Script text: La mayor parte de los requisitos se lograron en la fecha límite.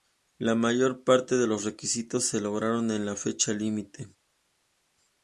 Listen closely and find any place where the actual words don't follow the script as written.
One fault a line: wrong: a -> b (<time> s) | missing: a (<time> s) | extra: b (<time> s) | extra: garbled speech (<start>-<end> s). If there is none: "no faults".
no faults